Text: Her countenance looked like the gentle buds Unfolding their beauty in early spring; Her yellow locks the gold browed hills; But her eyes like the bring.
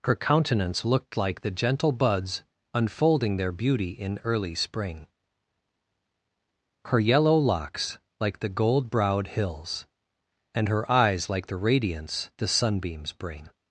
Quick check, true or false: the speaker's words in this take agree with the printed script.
false